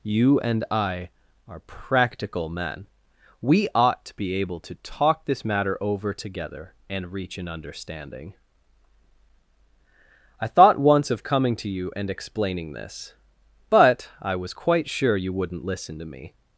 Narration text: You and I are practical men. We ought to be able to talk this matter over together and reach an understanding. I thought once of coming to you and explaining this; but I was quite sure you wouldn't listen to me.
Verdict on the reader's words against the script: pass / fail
pass